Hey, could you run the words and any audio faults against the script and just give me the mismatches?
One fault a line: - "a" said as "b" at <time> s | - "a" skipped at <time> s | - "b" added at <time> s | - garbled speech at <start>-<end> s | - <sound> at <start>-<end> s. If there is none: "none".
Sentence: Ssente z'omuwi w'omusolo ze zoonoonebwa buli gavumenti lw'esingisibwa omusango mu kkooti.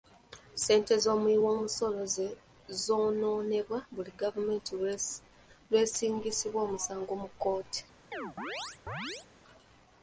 - chirp at 8.1-9.3 s